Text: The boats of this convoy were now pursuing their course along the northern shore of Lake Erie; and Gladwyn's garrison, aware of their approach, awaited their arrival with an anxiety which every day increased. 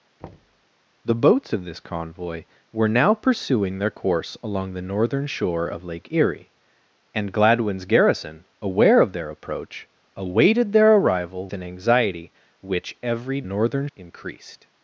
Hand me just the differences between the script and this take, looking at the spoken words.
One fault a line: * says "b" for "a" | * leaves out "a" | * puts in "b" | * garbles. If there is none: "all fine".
* leaves out "with"
* says "northern" for "day"